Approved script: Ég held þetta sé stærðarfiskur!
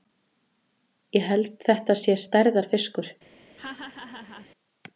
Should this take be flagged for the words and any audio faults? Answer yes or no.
yes